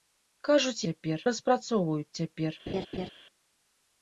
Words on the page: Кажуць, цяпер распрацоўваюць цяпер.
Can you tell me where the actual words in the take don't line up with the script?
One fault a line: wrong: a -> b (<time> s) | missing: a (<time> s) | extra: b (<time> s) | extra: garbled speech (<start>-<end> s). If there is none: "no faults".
no faults